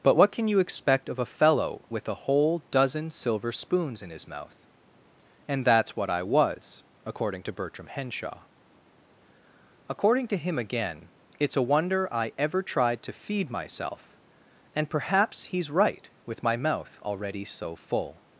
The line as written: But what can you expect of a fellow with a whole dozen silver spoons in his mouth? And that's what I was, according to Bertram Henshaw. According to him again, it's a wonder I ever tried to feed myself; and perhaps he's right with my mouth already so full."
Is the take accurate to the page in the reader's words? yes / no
yes